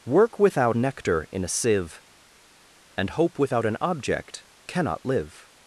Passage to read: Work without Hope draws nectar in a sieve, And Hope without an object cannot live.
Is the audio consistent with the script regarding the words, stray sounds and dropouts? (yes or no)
no